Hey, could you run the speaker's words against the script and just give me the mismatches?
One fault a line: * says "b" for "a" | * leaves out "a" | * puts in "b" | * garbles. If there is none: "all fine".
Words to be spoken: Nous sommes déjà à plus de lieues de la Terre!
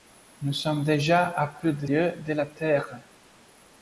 all fine